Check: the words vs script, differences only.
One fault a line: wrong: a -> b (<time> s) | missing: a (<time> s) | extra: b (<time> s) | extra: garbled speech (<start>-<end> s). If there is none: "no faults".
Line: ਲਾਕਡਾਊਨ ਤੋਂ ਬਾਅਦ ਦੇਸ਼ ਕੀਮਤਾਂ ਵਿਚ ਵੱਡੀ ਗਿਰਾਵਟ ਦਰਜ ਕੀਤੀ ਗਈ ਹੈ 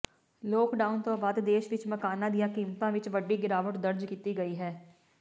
extra: ਵਿਚ ਮਕਾਨਾਂ ਦੀਆਂ (1.7 s)